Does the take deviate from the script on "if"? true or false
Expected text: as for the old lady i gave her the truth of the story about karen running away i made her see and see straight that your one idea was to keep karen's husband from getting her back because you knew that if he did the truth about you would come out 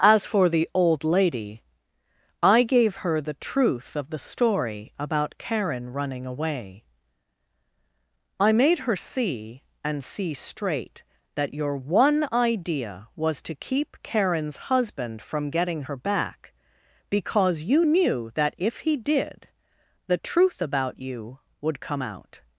false